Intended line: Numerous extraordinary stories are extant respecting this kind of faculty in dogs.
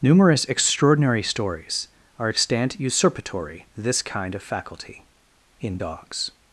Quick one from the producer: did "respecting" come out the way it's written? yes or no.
no